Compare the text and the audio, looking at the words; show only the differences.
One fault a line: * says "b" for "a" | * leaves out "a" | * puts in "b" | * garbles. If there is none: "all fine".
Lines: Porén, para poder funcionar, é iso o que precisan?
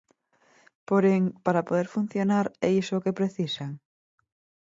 all fine